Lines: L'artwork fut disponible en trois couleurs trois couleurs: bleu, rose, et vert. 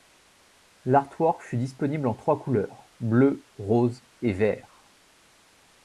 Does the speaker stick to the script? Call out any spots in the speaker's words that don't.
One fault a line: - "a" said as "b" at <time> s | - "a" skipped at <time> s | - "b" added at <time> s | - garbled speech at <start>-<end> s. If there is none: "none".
- "trois couleurs" skipped at 2.9 s